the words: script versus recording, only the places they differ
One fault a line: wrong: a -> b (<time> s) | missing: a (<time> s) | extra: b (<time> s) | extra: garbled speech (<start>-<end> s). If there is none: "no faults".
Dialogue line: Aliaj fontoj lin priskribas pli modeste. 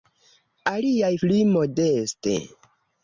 missing: fontoj lin priskribas (1.1 s)